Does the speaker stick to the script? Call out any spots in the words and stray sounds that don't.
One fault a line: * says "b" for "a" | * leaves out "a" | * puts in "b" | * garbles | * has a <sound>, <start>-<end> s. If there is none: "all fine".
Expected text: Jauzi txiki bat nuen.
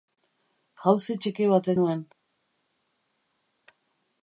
all fine